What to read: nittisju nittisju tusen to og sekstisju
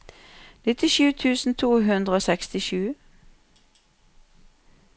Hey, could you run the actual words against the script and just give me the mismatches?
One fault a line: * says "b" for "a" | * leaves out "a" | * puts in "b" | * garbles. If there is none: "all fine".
* leaves out "nittisju"
* puts in "hundre"